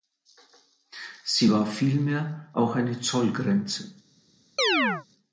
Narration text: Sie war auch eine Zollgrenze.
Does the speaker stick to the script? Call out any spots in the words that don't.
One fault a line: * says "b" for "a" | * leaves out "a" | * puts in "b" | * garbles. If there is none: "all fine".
* puts in "vielmehr"